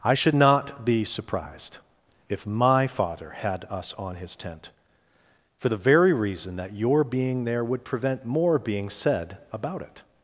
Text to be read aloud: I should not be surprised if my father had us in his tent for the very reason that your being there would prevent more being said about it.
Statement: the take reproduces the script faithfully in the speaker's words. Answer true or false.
false